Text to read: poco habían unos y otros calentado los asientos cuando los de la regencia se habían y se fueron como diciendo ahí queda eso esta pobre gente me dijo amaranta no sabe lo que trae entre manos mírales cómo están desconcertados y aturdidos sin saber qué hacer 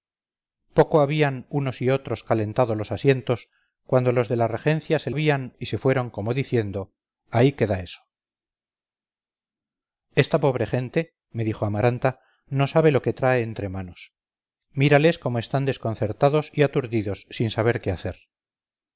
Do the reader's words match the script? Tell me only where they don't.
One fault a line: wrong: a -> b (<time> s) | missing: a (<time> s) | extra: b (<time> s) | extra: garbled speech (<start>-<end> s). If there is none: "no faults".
no faults